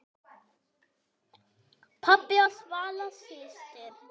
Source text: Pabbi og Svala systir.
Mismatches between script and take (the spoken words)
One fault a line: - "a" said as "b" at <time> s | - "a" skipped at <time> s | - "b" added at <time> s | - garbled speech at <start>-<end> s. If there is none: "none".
none